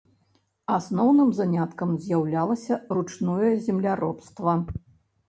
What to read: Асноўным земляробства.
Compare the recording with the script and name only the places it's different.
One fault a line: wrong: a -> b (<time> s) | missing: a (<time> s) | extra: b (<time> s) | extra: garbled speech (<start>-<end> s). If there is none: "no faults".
extra: заняткам з'яўлялася ручное (1.4 s)